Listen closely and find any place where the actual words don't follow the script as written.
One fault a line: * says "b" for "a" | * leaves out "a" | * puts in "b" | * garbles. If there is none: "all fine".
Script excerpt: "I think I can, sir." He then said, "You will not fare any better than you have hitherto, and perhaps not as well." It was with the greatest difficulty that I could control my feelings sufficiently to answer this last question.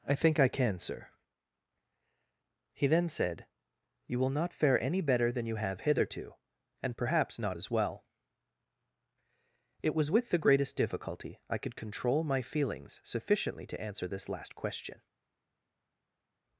* leaves out "that"